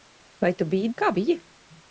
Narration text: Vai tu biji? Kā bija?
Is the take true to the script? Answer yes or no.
yes